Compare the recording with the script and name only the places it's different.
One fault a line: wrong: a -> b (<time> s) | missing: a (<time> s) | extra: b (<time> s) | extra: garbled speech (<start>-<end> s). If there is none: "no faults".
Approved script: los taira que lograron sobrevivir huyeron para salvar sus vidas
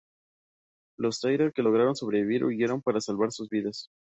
no faults